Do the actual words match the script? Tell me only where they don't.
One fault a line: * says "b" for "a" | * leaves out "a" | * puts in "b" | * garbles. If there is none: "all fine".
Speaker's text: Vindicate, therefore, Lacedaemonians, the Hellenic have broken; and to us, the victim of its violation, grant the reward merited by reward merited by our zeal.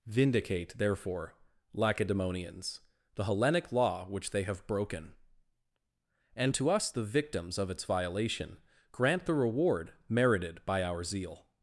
* puts in "law which they"
* says "victims" for "victim"
* leaves out "reward merited by"